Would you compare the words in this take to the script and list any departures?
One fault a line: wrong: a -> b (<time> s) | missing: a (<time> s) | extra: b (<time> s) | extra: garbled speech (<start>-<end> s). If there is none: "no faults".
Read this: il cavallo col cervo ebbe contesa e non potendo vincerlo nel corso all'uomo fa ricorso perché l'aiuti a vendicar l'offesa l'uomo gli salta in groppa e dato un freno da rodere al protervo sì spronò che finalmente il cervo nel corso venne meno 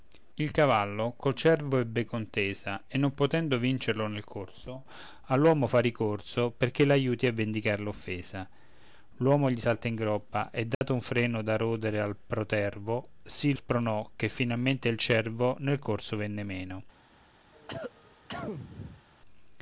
no faults